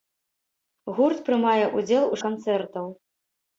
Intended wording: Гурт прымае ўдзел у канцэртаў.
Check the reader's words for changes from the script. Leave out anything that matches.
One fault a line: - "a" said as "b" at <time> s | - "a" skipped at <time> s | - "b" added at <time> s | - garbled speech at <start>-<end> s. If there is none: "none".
none